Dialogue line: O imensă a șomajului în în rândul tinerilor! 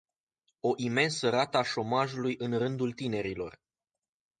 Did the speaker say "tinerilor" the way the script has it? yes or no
yes